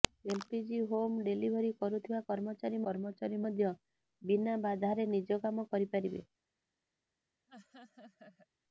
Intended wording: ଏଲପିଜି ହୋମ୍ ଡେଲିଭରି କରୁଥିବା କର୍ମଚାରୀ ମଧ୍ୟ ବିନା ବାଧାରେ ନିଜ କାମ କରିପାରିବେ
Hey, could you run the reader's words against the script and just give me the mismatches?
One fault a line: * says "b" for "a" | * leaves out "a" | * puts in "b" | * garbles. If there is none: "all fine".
* puts in "କର୍ମଚାରୀ"